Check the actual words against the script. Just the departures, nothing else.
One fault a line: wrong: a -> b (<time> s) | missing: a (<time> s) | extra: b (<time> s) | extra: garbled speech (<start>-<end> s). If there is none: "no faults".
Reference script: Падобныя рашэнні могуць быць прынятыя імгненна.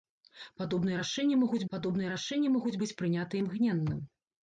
extra: падобныя рашэнні могуць (1.7 s)